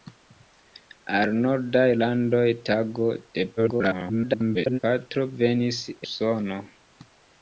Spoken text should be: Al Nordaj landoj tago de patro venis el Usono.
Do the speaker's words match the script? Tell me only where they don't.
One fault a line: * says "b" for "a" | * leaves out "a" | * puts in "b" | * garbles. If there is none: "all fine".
* garbles
* leaves out "el"